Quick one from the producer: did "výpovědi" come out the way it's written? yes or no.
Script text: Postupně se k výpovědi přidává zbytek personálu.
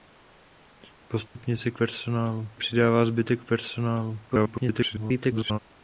no